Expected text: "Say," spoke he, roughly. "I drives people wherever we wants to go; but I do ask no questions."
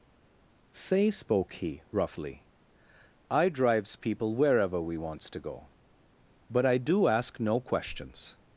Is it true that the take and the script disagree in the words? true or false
false